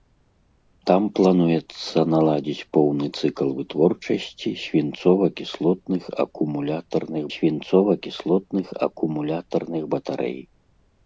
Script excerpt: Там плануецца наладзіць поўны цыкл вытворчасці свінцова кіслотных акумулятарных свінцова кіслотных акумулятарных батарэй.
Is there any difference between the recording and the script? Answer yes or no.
no